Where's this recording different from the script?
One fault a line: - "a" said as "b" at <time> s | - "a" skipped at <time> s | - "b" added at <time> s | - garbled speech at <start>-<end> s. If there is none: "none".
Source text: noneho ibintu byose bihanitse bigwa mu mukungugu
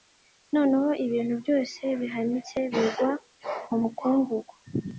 none